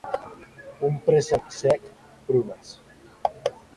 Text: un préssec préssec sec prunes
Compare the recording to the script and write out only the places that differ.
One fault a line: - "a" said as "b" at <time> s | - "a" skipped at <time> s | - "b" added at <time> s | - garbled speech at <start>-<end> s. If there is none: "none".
- "préssec" skipped at 1.4 s